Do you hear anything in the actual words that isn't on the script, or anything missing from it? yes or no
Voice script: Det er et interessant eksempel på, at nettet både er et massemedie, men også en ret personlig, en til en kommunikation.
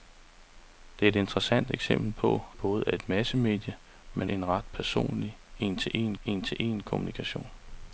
yes